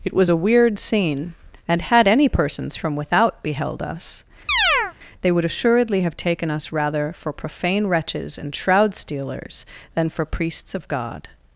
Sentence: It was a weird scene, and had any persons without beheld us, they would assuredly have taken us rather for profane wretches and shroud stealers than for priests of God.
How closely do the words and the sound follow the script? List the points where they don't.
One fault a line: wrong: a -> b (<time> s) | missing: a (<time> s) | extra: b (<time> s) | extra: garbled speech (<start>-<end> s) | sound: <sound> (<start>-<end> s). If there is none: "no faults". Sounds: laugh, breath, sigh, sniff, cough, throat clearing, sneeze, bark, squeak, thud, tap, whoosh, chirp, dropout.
extra: from (2.7 s)
sound: chirp (4.5-4.9 s)